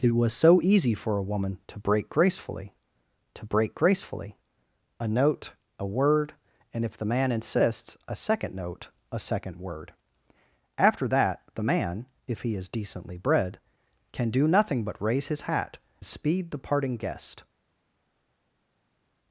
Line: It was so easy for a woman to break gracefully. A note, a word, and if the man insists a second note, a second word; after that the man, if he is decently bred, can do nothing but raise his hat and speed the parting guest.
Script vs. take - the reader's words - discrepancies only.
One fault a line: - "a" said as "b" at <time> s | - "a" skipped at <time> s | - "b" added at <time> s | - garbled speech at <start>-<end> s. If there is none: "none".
- "to break gracefully" added at 3.3 s
- "and" skipped at 15.8 s